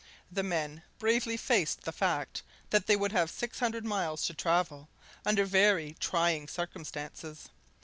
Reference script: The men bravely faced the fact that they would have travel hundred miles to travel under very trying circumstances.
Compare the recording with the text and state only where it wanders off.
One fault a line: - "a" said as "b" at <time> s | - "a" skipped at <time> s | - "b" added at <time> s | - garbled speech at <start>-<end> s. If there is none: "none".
- "travel" said as "six" at 3.3 s